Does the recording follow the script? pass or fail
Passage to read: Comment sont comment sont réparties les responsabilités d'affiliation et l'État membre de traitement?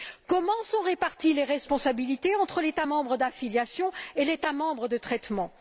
fail